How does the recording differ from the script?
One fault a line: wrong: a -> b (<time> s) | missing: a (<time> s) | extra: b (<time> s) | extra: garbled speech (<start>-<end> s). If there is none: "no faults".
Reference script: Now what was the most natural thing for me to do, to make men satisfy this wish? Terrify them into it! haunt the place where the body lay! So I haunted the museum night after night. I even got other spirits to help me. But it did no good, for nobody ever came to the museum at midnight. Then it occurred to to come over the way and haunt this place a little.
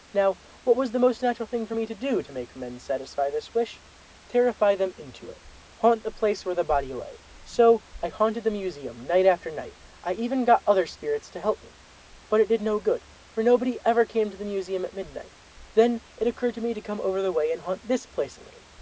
extra: me (16.6 s)